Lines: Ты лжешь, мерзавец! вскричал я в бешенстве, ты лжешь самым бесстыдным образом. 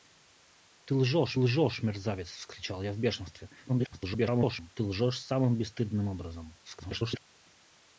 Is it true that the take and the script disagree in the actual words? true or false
true